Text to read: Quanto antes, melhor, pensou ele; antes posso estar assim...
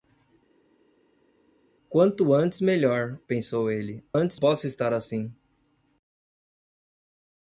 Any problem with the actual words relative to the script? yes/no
no